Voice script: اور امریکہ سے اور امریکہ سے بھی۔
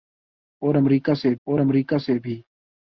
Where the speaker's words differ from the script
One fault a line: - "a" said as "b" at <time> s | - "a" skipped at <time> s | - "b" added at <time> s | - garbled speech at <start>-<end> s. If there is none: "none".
none